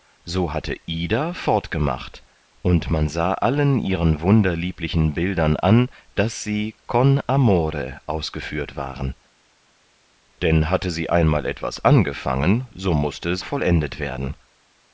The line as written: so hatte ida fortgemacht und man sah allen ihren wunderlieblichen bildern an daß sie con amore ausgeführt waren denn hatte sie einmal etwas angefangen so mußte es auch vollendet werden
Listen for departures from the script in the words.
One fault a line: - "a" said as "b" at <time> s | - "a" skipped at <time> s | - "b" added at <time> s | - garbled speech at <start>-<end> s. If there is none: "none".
- "auch" skipped at 13.4 s